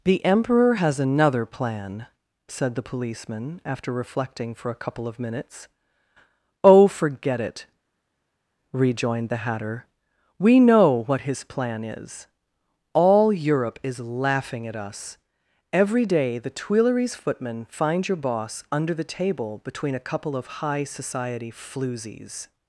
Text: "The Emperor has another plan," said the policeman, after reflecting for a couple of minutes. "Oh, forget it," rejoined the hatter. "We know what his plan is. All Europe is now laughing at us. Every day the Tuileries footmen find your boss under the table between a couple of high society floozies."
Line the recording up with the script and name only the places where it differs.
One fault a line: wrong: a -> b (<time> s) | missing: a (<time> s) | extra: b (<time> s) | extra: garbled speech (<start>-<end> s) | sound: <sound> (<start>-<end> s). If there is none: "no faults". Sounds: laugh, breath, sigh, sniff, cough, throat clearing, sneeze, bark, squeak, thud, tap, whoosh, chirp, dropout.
missing: now (14.0 s)